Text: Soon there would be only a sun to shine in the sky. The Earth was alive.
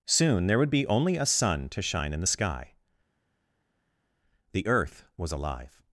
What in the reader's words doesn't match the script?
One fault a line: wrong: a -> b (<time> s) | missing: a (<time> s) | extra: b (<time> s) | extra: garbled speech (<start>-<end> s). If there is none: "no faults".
no faults